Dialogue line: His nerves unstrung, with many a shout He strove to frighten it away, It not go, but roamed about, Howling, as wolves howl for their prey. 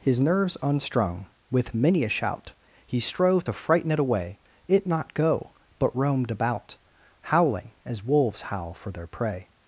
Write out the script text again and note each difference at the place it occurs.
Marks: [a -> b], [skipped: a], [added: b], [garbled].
His nerves unstrung, with many a shout He strove to frighten it away, It not go, but roamed about, Howling, as wolves howl for their prey.